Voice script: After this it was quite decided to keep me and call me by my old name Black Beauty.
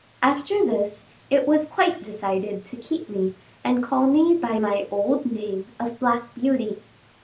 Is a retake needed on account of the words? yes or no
yes